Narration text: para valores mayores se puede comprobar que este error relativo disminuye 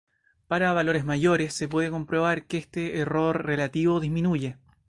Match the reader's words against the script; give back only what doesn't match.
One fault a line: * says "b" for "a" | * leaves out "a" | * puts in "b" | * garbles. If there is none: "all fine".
all fine